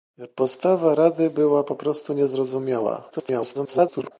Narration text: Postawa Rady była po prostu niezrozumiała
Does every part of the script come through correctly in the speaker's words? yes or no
no